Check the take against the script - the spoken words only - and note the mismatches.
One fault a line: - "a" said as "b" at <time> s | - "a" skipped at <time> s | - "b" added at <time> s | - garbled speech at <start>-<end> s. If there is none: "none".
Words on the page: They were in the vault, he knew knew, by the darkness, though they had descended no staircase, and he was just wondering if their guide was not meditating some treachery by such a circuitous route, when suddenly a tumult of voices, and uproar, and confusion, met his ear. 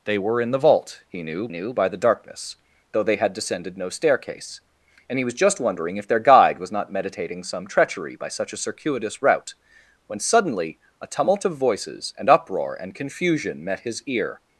none